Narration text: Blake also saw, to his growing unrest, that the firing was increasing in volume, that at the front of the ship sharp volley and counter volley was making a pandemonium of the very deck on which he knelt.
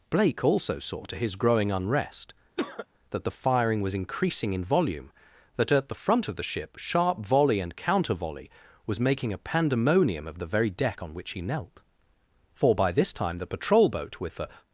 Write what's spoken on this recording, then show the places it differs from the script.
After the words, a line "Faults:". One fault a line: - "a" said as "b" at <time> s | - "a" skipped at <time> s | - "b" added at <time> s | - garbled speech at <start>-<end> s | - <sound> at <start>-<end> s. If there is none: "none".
Blake also saw, to his growing unrest, that the firing was increasing in volume, that at the front of the ship sharp volley and counter volley was making a pandemonium of the very deck on which he knelt. For by this time the patrol boat with the
Faults:
- cough at 2.6-2.9 s
- "For by this time the patrol boat with the" added at 12.5 s